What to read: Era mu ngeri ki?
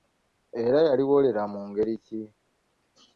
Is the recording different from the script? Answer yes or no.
yes